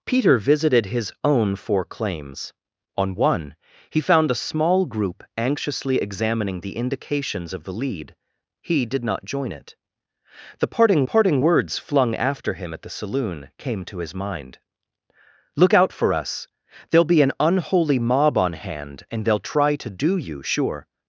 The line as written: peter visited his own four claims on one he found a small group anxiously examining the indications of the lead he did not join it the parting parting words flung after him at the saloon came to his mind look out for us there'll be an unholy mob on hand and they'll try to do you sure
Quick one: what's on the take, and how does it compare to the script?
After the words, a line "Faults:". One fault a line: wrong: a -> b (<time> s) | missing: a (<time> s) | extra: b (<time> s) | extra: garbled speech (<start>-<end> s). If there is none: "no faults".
peter visited his own four claims on one he found a small group anxiously examining the indications of the lead he did not join it the parting parting words flung after him at the saloon came to his mind look out for us there'll be an unholy mob on hand and they'll try to do you sure
Faults:
no faults